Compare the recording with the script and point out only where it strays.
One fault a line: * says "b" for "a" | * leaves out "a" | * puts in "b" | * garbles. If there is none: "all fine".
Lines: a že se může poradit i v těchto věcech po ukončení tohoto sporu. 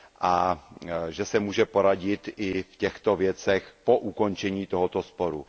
all fine